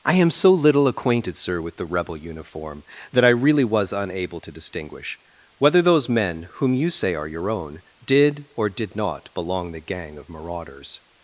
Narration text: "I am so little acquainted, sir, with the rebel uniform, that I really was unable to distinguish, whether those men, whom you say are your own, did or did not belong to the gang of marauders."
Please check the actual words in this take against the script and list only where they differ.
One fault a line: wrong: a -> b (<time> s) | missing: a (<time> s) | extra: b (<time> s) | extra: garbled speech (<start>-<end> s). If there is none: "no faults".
missing: to (9.7 s)